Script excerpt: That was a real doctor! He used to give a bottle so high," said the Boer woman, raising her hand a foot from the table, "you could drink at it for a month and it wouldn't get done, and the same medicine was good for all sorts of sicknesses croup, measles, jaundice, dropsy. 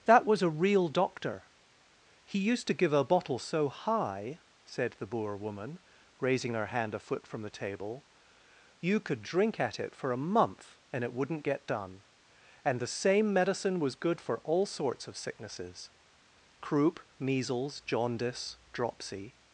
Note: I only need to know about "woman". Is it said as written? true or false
true